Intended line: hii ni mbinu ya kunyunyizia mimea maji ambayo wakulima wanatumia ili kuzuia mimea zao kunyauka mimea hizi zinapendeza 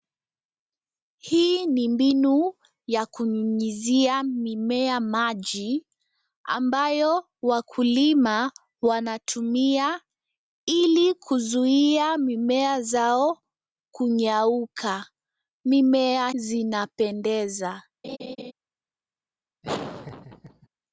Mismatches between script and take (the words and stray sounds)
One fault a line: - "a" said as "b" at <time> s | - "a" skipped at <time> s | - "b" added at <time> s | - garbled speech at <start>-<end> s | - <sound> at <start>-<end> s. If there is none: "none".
- "hizi" skipped at 16.3 s
- laugh at 18.0-18.5 s
- laugh at 19.6-20.7 s